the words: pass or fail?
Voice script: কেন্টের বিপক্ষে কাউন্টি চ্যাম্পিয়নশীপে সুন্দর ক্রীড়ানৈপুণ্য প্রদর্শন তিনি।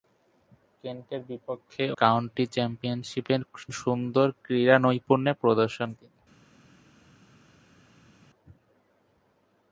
pass